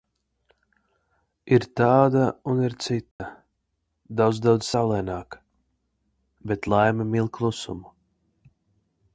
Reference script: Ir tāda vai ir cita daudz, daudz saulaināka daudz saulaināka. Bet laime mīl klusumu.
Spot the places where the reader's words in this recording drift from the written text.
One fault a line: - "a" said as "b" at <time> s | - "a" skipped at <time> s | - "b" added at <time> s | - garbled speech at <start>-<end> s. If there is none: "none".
- "vai" said as "un" at 2.5 s
- "daudz saulaināka" skipped at 5.4 s